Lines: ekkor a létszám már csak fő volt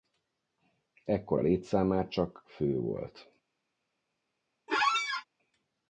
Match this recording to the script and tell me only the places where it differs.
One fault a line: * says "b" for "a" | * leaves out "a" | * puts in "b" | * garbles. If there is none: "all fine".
all fine